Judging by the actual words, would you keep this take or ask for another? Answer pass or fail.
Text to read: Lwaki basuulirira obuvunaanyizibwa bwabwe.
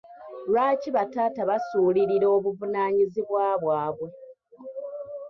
fail